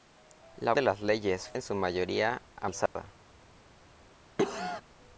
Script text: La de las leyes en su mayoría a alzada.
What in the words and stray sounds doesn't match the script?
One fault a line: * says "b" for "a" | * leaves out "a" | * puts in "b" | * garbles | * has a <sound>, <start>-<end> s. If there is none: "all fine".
* has a dropout, 2.9-3.0 s
* has a cough, 4.4-4.8 s